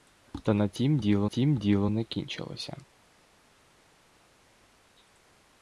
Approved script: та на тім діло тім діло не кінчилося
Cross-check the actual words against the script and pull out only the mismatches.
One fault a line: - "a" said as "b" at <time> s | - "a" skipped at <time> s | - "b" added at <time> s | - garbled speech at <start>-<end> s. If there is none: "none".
none